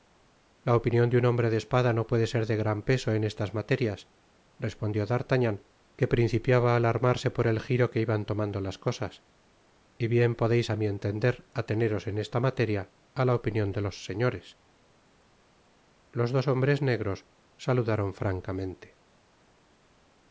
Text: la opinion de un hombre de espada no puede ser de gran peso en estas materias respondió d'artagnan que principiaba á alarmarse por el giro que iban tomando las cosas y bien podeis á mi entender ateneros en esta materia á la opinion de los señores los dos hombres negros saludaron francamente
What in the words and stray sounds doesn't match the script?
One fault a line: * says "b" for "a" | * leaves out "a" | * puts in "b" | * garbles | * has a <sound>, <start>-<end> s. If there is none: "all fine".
all fine